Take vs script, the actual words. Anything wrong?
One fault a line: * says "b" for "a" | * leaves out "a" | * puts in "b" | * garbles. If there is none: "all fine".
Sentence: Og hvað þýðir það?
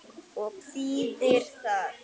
* leaves out "hvað"